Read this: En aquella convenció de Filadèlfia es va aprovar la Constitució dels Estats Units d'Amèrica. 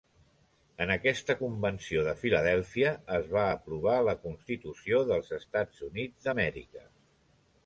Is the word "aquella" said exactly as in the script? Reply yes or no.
no